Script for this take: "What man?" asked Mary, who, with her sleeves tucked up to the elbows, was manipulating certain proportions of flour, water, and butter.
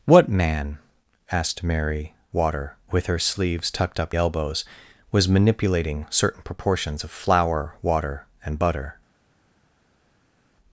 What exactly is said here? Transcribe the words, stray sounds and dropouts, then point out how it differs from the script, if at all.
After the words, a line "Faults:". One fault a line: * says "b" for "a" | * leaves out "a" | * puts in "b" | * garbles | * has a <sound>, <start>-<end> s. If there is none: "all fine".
"What man?" asked Mary, water, with her sleeves tucked up elbows, was manipulating certain proportions of flour, water, and butter.
Faults:
* says "water" for "who"
* leaves out "to the"